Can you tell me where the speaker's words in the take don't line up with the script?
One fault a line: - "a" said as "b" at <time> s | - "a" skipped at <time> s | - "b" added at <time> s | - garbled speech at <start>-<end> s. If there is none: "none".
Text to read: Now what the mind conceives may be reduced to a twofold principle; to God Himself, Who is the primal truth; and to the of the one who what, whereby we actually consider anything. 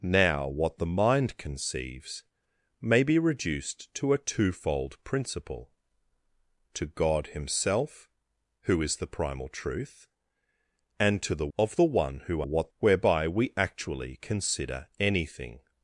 none